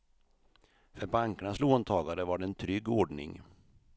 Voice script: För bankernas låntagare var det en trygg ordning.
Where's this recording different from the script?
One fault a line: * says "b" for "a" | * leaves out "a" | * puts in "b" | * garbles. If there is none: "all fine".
all fine